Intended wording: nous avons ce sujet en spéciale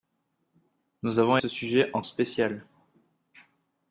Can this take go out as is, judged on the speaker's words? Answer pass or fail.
pass